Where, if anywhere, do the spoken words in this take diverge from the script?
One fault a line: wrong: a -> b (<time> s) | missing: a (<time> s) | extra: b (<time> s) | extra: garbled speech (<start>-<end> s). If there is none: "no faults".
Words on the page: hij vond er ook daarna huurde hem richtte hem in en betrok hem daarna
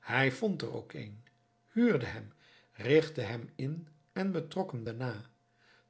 wrong: daarna -> een (0.9 s)